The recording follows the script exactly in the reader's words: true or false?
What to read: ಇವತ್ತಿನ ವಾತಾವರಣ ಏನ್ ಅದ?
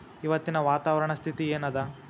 false